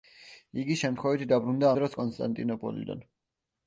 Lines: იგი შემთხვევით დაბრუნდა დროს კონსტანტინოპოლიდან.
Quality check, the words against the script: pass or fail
pass